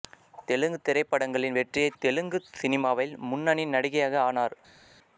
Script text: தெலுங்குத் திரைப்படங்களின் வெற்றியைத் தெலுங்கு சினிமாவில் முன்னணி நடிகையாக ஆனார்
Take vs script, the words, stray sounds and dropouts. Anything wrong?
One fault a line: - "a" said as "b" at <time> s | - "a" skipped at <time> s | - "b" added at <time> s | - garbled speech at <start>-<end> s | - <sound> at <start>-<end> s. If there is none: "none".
none